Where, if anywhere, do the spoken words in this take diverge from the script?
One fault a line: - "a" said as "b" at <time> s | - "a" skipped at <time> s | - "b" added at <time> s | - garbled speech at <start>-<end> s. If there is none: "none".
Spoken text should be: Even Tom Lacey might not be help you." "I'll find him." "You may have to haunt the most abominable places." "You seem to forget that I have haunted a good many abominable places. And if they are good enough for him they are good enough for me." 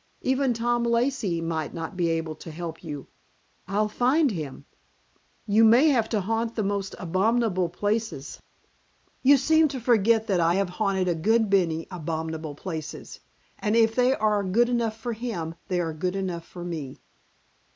- "able to" added at 2.1 s